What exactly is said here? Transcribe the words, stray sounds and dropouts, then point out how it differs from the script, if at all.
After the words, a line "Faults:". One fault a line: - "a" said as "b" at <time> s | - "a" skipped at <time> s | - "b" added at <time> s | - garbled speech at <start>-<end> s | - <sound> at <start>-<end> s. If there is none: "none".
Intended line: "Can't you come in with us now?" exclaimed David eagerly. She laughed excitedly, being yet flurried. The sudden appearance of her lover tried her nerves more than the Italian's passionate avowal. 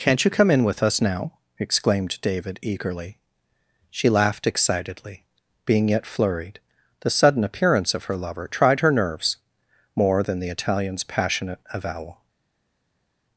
"Can't you come in with us now?" exclaimed David eagerly. She laughed excitedly, being yet flurried. The sudden appearance of her lover tried her nerves more than the Italian's passionate avowal.
Faults:
none